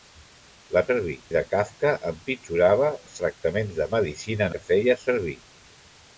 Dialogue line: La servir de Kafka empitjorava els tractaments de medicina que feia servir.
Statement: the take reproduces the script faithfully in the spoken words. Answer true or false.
true